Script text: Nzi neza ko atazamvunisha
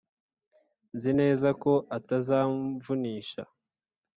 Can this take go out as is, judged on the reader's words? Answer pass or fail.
pass